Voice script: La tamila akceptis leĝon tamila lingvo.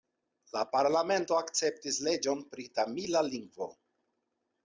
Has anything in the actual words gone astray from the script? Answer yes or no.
yes